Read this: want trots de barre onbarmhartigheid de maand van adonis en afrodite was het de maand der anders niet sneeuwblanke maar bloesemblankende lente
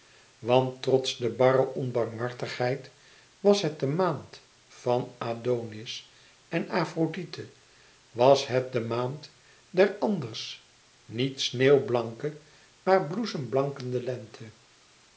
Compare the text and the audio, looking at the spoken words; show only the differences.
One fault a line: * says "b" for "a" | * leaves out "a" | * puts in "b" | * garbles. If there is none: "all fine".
* puts in "was het"